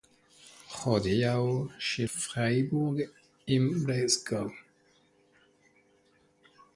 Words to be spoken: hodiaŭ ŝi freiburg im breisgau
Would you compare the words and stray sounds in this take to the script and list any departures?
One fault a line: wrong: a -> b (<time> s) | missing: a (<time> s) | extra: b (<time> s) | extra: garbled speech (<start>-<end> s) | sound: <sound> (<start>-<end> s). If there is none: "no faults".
no faults